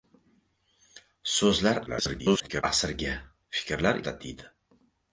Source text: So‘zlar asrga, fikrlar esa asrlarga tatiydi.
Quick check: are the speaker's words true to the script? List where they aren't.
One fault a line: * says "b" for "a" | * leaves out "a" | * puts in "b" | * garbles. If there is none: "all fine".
* garbles
* leaves out "esa asrlarga"